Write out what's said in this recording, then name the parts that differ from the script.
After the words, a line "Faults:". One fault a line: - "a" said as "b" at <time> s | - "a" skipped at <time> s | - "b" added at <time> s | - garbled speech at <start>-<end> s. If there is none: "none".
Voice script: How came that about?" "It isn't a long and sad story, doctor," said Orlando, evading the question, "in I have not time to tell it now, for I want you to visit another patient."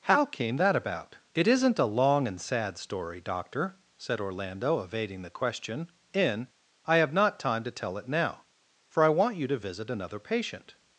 How came that about?" "It isn't a long and sad story, doctor," said Orlando, evading the question, "in I have not time to tell it now, for I want you to visit another patient."
Faults:
none